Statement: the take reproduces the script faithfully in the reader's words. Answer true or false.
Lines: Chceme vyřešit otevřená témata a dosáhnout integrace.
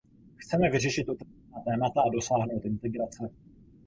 true